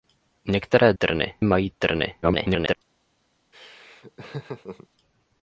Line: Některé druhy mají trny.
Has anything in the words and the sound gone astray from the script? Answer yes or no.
yes